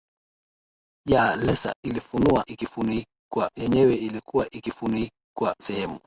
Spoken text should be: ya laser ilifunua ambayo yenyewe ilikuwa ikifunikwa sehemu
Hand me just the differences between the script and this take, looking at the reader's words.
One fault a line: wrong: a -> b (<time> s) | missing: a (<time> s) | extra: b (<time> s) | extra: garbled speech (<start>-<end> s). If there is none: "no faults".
wrong: ambayo -> ikifunikwa (2.4 s)